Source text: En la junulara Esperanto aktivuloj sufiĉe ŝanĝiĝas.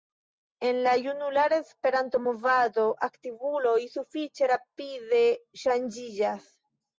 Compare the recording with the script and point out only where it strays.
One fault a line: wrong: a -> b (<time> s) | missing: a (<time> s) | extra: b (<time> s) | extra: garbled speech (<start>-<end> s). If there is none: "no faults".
extra: movado (2.3 s)
extra: rapide (4.5 s)